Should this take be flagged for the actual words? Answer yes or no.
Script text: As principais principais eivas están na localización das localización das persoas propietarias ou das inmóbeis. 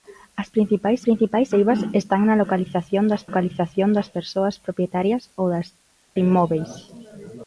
no